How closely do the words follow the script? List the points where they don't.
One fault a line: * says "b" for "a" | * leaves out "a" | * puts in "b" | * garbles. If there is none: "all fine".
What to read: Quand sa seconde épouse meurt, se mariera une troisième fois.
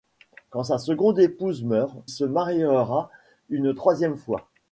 all fine